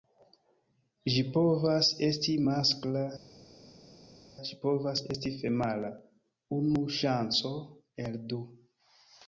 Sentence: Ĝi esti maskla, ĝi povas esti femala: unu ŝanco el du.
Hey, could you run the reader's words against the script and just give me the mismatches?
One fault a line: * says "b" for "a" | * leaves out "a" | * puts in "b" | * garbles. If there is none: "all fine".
* puts in "povas"